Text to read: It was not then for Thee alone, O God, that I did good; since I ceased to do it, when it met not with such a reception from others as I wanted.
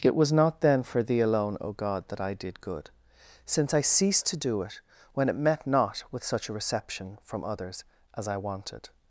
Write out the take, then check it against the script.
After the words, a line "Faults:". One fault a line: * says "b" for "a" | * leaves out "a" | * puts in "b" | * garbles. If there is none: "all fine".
It was not then for Thee alone, O God, that I did good; since I ceased to do it, when it met not with such a reception from others as I wanted.
Faults:
all fine